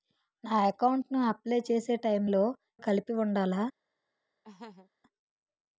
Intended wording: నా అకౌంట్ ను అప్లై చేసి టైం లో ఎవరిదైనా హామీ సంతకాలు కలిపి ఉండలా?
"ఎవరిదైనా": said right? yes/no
no